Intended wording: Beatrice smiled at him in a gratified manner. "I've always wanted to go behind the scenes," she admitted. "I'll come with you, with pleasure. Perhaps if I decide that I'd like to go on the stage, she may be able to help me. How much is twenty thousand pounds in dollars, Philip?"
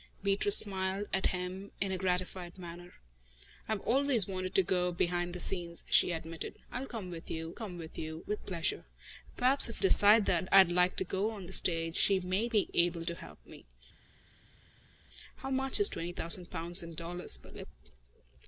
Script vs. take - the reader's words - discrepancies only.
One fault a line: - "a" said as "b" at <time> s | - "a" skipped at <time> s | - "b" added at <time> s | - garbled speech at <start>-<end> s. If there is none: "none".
- "come" added at 7.5 s
- "you with" added at 8.0 s
- "I" skipped at 9.8 s